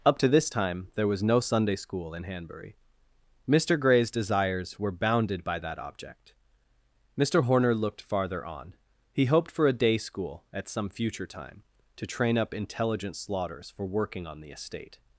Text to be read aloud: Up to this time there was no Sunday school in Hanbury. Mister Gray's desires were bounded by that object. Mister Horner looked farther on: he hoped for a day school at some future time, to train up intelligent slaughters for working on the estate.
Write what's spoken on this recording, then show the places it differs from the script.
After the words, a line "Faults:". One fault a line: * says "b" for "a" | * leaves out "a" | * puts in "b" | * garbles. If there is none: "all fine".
Up to this time there was no Sunday school in Hanbury. Mister Gray's desires were bounded by that object. Mister Horner looked farther on: he hoped for a day school at some future time, to train up intelligent slaughters for working on the estate.
Faults:
all fine